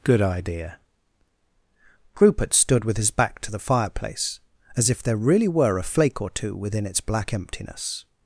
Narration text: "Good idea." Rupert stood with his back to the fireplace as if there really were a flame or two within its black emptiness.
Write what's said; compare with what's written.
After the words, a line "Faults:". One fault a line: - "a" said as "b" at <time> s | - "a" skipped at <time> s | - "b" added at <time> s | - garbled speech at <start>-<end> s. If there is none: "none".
"Good idea." Rupert stood with his back to the fireplace as if there really were a flake or two within its black emptiness.
Faults:
- "flame" said as "flake" at 5.8 s